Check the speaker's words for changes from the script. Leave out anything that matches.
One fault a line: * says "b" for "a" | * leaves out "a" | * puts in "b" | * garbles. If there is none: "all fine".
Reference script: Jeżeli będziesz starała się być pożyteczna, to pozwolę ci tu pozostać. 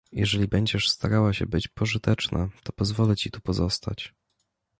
all fine